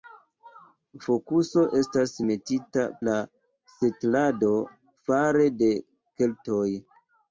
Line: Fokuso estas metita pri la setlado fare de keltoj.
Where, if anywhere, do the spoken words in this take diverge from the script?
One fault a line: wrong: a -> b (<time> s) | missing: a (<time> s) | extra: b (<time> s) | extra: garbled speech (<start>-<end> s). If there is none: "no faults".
missing: pri (2.8 s)